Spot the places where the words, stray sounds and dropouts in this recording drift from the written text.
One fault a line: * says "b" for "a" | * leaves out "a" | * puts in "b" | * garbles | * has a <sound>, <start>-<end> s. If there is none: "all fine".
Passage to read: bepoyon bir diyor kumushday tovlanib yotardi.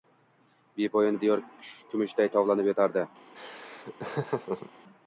* leaves out "bir"
* has a laugh, 3.3-4.7 s